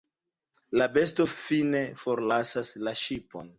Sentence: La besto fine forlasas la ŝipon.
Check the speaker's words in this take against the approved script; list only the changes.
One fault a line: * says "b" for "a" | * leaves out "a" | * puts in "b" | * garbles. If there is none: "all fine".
all fine